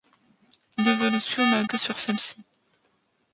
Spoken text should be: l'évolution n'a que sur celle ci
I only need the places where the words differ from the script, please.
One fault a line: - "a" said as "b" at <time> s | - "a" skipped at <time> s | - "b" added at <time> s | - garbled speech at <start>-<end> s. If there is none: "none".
none